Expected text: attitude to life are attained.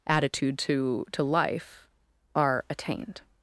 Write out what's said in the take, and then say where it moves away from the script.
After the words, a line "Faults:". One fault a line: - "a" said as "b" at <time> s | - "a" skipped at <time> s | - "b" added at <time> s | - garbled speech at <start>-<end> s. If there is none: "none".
attitude to to life are attained.
Faults:
- "to" added at 1.1 s